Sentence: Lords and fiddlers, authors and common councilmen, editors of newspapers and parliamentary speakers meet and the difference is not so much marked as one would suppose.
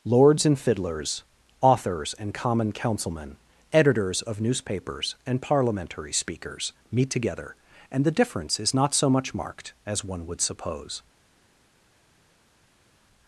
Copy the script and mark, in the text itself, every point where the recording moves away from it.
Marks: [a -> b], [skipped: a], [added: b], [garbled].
Lords and fiddlers, authors and common councilmen, editors of newspapers and parliamentary speakers meet [added: together] and the difference is not so much marked as one would suppose.